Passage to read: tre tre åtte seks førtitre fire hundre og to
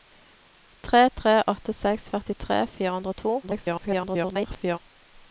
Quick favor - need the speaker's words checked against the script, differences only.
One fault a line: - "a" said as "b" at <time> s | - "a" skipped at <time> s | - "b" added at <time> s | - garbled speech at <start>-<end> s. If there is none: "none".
- garbled speech at 3.4-4.8 s